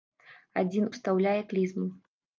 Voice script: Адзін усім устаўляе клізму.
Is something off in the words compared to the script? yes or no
yes